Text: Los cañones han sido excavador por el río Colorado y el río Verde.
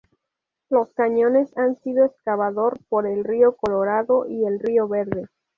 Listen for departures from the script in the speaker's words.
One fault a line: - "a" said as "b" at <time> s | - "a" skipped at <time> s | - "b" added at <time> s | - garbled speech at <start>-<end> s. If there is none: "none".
none